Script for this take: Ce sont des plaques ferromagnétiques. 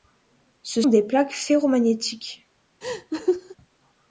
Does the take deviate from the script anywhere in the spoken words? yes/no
yes